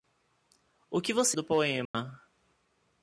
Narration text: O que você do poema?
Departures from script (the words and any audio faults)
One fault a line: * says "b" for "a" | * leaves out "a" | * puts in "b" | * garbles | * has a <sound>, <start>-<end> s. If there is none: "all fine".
* has a dropout, 1.9-1.9 s